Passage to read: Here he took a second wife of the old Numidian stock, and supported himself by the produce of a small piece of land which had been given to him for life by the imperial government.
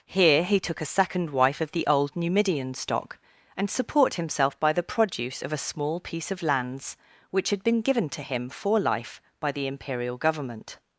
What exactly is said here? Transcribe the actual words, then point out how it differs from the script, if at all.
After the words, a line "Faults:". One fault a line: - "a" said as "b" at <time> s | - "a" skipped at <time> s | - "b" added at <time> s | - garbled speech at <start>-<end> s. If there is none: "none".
Here he took a second wife of the old Numidian stock, and support himself by the produce of a small piece of lands which had been given to him for life by the imperial government.
Faults:
- "supported" said as "support" at 3.7 s
- "land" said as "lands" at 6.4 s